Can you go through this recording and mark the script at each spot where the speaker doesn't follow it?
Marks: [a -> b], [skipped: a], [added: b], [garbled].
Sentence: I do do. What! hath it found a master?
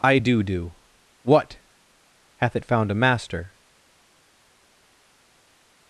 I do do. What! hath it found a master?